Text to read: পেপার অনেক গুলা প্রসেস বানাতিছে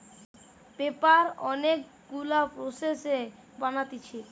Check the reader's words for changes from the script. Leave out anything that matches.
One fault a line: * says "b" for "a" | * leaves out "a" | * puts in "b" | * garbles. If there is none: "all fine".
all fine